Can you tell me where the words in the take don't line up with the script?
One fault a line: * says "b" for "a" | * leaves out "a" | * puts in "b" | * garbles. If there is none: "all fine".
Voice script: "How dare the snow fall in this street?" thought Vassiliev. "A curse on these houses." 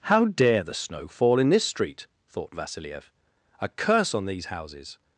all fine